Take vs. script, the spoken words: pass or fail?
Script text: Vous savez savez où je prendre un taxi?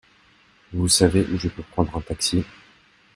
fail